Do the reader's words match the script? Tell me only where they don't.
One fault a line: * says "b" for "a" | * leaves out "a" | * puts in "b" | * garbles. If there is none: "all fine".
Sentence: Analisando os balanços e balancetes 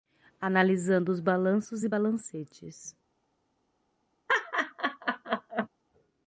all fine